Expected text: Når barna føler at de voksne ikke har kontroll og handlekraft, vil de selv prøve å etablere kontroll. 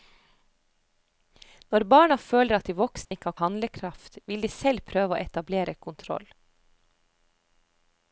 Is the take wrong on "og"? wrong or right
wrong